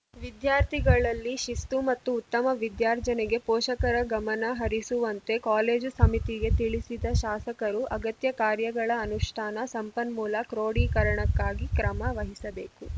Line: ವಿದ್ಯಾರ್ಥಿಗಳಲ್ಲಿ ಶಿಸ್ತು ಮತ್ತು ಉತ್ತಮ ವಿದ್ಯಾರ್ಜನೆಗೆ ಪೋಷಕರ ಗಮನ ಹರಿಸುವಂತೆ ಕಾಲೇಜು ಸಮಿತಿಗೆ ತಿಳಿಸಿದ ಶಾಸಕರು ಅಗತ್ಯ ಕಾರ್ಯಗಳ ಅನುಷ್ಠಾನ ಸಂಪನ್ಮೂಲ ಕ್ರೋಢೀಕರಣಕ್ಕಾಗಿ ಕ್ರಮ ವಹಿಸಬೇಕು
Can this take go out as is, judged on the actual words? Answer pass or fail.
pass